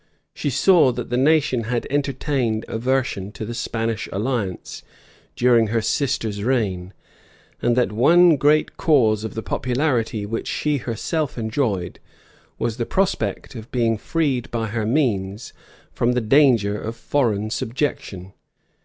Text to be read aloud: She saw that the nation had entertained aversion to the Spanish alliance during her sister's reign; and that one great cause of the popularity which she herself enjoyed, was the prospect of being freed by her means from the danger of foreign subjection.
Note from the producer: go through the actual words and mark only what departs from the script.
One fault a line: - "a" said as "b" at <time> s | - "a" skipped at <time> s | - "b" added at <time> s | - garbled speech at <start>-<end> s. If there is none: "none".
none